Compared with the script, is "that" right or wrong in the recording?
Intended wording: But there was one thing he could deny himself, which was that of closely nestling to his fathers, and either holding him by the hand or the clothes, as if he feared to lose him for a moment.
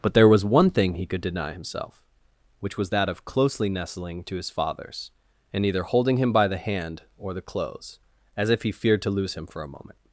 right